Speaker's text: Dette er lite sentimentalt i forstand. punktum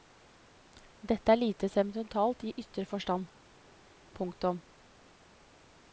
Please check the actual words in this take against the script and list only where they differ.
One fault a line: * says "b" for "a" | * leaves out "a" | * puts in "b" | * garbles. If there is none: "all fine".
* puts in "ytre"